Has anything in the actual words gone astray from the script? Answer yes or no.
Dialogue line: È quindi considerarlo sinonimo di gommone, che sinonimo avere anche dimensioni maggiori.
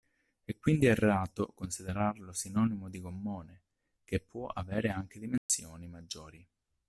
yes